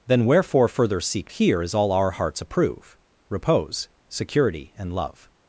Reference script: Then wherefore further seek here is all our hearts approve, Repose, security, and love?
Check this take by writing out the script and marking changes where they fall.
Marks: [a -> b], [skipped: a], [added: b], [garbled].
Then wherefore further seek here is all our hearts approve, Repose, security, and love?